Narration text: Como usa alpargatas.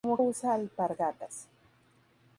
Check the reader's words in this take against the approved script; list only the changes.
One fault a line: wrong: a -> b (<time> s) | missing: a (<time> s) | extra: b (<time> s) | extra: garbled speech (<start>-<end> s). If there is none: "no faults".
no faults